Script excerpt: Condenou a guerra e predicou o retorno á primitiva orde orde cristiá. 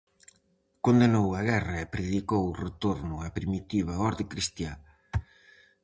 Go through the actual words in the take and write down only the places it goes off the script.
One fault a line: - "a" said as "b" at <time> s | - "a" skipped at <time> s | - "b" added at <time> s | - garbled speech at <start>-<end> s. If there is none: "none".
- "orde" skipped at 4.2 s